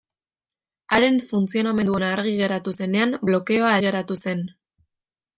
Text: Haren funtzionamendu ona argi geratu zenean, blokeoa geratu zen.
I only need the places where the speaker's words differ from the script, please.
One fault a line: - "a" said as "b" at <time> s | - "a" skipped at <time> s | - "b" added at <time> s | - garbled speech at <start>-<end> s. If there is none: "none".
none